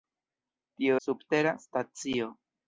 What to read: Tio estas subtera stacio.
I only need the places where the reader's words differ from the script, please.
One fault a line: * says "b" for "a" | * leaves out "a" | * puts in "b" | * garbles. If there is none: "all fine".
* leaves out "estas"